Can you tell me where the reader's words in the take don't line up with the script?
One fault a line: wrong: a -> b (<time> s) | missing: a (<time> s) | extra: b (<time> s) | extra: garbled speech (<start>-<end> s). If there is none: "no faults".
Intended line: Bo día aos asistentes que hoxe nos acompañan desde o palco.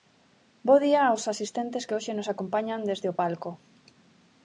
no faults